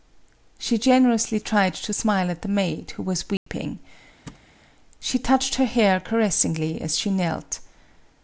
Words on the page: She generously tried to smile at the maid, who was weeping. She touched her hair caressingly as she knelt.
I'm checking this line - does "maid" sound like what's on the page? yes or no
yes